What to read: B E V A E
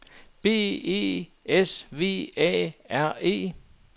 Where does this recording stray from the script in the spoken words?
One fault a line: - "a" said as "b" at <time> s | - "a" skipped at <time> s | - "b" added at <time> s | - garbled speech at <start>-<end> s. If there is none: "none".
- "S" added at 1.4 s
- "R" added at 2.9 s